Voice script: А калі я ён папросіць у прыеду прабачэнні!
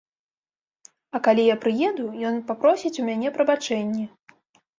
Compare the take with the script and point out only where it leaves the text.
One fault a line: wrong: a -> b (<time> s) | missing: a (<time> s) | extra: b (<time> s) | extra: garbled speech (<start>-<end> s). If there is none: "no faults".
extra: прыеду (1.6 s)
wrong: прыеду -> мяне (3.1 s)